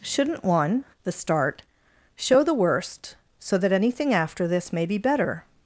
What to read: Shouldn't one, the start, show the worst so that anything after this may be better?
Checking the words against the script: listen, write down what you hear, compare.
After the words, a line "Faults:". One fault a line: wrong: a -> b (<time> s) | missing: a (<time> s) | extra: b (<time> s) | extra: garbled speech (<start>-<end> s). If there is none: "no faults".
Shouldn't one, the start, show the worst so that anything after this may be better?
Faults:
no faults